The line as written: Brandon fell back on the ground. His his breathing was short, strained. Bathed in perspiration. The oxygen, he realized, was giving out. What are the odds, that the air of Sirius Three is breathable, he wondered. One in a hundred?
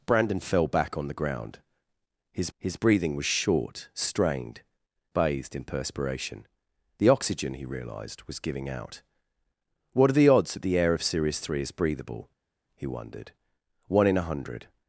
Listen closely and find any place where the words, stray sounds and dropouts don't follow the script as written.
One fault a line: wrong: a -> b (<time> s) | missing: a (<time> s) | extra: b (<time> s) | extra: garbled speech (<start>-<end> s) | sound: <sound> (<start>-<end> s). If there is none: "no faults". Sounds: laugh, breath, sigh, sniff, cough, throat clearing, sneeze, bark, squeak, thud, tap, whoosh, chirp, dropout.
no faults